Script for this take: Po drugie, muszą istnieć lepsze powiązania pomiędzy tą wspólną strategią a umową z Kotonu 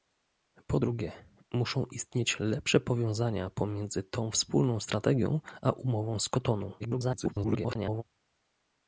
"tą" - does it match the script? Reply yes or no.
yes